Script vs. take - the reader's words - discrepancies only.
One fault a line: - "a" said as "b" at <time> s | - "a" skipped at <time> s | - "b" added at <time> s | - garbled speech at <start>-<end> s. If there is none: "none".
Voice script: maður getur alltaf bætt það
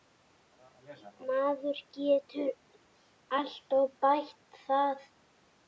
none